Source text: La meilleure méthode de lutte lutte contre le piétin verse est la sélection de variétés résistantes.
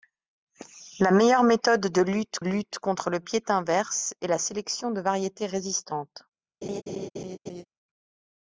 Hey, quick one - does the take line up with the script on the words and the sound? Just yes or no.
no